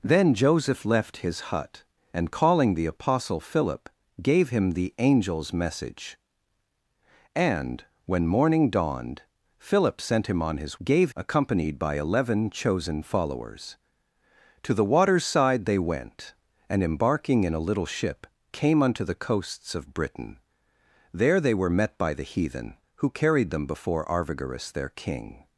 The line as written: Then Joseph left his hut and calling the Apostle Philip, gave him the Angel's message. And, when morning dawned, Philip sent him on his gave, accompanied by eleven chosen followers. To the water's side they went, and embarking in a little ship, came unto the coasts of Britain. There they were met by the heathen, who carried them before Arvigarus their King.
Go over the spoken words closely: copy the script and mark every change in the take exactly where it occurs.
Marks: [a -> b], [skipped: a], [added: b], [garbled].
Then Joseph left his hut and calling the Apostle Philip, gave him the Angel's message. And, when morning dawned, Philip sent him on his gave, accompanied by eleven chosen followers. To the water's side they went, and embarking in a little ship, came unto the coasts of Britain. There they were met by the heathen, who carried them before Arvigarus their King.